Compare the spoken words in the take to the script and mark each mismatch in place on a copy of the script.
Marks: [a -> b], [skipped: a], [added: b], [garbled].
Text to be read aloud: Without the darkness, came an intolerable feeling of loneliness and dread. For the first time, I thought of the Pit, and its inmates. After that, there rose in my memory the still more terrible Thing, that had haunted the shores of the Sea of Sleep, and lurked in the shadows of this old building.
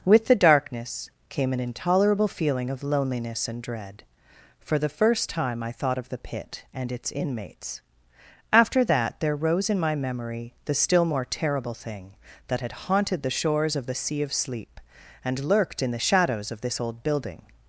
[Without -> With] the darkness, came an intolerable feeling of loneliness and dread. For the first time, I thought of the Pit, and its inmates. After that, there rose in my memory the still more terrible Thing, that had haunted the shores of the Sea of Sleep, and lurked in the shadows of this old building.